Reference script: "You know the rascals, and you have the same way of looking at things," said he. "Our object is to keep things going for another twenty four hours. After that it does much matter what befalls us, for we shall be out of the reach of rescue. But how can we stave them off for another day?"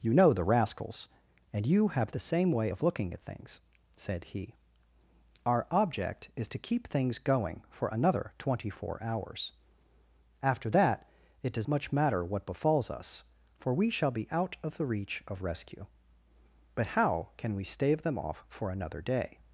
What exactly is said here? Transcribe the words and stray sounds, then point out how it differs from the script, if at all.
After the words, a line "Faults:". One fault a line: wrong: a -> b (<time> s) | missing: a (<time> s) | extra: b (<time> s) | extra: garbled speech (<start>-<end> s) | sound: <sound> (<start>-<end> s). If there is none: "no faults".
"You know the rascals, and you have the same way of looking at things," said he. "Our object is to keep things going for another twenty four hours. After that it does much matter what befalls us, for we shall be out of the reach of rescue. But how can we stave them off for another day?"
Faults:
no faults